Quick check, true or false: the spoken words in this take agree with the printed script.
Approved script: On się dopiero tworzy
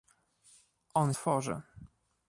false